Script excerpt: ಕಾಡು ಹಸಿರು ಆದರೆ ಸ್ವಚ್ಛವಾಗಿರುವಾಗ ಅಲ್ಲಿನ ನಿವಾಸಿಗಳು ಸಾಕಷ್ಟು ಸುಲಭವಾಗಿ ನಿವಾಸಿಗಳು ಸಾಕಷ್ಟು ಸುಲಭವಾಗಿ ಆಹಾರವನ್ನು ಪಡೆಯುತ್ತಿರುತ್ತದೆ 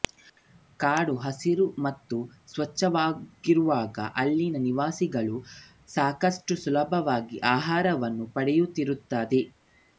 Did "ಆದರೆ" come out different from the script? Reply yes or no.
yes